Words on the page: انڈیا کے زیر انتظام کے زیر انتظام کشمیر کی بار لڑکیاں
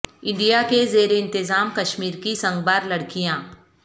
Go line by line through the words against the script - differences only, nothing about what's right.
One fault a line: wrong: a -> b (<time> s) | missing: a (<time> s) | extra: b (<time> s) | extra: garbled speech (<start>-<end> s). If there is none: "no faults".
missing: کے زیر انتظام (1.7 s)
extra: سنگ (2.3 s)